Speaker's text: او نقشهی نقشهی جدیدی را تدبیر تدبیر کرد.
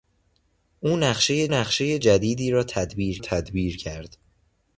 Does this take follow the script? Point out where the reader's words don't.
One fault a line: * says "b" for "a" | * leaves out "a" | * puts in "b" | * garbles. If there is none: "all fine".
all fine